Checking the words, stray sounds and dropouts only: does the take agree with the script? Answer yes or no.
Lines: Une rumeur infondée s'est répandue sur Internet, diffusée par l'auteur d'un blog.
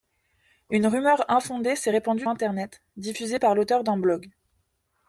no